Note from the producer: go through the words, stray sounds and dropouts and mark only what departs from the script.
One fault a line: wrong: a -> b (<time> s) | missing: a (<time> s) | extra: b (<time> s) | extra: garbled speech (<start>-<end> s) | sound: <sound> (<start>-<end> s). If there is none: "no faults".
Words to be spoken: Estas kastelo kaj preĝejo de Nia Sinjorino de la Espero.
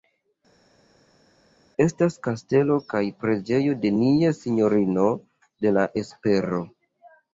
no faults